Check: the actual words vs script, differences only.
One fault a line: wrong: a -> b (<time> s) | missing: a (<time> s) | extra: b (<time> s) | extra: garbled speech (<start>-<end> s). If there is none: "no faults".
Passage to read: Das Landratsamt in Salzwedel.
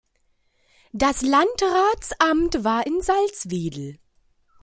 extra: war (2.6 s)